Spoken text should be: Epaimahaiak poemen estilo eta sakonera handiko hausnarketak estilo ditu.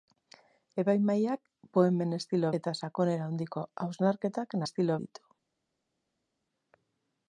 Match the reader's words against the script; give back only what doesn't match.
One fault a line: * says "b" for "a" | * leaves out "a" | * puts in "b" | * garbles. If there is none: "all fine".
all fine